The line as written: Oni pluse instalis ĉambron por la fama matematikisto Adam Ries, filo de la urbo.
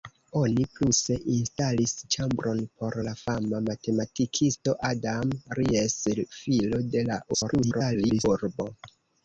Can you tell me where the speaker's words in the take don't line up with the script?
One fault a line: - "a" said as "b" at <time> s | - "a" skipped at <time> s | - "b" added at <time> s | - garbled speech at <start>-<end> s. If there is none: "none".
- garbled speech at 7.3-8.3 s